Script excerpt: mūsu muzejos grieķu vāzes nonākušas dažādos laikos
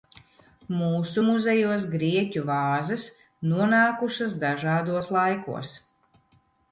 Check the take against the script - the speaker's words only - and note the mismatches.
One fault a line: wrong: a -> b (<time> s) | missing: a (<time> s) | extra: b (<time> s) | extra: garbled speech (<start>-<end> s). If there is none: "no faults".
no faults